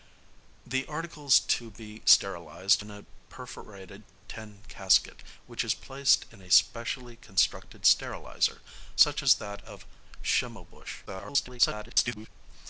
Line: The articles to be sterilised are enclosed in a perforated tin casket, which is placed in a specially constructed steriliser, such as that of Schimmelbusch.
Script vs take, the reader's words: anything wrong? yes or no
yes